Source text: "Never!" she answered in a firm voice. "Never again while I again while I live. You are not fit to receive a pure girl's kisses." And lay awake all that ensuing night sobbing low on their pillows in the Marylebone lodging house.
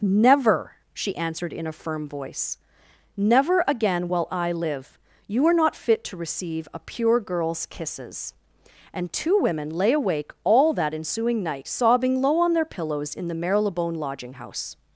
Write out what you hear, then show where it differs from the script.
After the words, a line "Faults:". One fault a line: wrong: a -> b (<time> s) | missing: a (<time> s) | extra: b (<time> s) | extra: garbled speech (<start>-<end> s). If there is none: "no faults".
"Never!" she answered in a firm voice. "Never again while I live. You are not fit to receive a pure girl's kisses." And two women lay awake all that ensuing night sobbing low on their pillows in the Marylebone lodging house.
Faults:
missing: again while I (4.5 s)
extra: two women (9.1 s)